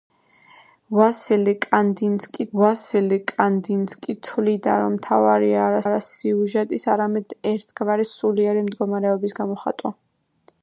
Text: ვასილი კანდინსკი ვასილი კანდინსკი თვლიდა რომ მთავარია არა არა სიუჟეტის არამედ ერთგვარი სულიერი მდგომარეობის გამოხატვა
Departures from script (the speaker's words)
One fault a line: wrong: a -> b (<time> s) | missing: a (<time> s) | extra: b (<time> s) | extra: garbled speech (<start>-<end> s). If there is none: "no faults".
no faults